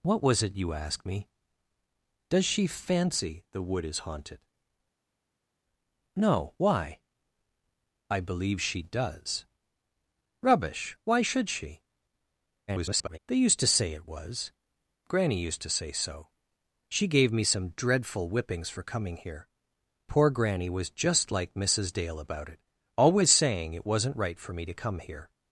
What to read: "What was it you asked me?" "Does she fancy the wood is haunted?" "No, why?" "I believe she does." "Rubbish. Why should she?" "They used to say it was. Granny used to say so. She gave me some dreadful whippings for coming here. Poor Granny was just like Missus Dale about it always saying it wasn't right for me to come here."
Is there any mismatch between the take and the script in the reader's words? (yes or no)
yes